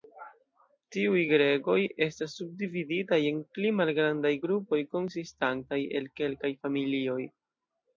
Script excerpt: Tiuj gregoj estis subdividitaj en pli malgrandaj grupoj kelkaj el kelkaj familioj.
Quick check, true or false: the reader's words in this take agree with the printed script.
false